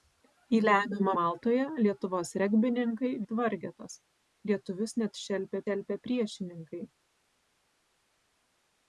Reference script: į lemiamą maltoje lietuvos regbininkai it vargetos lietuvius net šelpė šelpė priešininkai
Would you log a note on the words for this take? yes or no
no